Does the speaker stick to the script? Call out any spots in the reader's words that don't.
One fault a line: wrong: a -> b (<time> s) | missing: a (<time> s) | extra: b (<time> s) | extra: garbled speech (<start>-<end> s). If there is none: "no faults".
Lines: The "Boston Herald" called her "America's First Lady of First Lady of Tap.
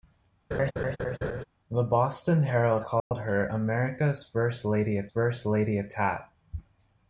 no faults